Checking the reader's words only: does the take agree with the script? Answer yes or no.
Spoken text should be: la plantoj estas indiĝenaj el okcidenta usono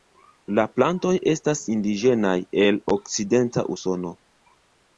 yes